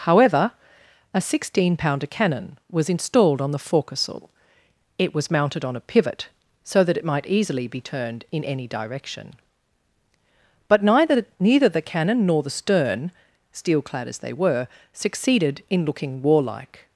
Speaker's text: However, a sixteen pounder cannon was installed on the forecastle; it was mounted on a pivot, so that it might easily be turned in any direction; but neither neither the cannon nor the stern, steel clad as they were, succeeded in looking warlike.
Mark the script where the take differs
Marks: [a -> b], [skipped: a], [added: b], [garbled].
However, a sixteen pounder cannon was installed on the forecastle; it was mounted on a pivot, so that it might easily be turned in any direction; but neither neither the cannon nor the stern, steel clad as they were, succeeded in looking warlike.